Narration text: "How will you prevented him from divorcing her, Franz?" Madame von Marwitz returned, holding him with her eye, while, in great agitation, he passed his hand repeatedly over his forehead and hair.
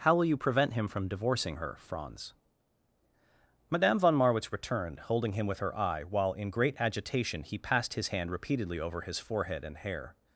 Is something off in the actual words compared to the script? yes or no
yes